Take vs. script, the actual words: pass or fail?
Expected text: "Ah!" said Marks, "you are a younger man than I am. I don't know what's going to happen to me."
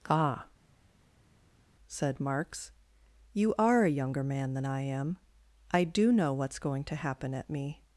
fail